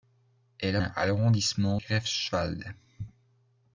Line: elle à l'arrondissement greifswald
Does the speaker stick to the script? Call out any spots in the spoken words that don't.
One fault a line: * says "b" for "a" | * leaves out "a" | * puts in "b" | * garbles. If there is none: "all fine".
all fine